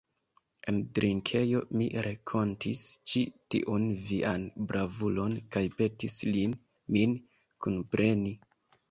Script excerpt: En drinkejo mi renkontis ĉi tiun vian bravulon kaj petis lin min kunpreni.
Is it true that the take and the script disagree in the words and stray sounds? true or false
false